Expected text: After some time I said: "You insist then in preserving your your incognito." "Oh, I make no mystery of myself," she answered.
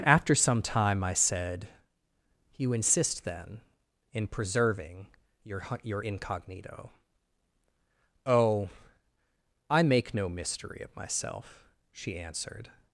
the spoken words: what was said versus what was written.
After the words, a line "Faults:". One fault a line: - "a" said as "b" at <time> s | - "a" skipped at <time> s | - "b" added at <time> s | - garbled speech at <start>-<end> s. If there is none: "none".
After some time I said: "You insist then in preserving your your incognito." "Oh, I make no mystery of myself," she answered.
Faults:
none